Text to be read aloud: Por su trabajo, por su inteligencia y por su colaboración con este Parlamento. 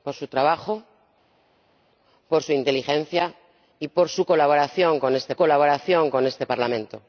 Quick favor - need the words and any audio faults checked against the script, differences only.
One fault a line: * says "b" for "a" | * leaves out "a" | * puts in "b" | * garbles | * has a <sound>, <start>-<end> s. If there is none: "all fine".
* puts in "colaboración con este"